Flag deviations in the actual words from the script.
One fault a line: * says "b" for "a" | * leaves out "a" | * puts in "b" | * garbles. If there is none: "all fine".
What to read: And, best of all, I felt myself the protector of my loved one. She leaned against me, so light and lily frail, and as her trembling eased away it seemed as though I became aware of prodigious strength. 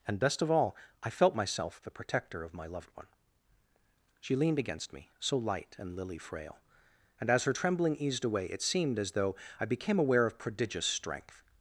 all fine